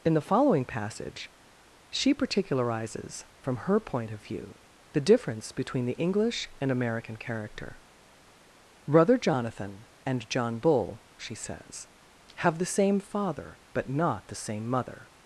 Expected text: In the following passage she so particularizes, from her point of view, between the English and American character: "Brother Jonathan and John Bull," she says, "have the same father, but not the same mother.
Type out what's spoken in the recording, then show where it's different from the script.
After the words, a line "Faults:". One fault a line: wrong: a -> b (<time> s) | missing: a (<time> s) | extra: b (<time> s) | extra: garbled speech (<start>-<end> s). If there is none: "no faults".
In the following passage she particularizes, from her point of view, the difference between the English and American character: "Brother Jonathan and John Bull," she says, "have the same father, but not the same mother.
Faults:
missing: so (2.1 s)
extra: the difference (4.9 s)